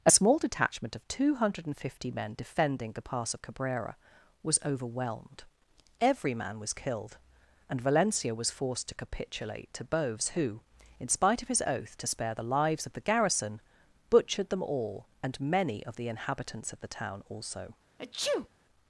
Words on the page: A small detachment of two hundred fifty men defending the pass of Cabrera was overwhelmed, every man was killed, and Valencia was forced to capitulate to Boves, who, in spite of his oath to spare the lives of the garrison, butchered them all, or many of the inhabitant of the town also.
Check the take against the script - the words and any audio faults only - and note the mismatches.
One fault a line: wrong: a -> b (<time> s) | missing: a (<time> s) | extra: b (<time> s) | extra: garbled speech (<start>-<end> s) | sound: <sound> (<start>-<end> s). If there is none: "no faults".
wrong: or -> and (15.2 s)
wrong: inhabitant -> inhabitants (16.1 s)
sound: sneeze (18.0-18.5 s)